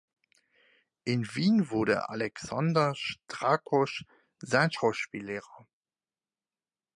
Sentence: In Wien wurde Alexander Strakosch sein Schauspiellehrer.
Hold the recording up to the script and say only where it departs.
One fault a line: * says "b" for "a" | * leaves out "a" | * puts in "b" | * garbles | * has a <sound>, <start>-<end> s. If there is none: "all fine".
all fine